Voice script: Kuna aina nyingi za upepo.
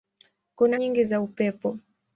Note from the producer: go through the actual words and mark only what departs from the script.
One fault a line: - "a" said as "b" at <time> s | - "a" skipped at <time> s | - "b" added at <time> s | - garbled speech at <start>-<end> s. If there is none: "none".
- "aina" skipped at 0.8 s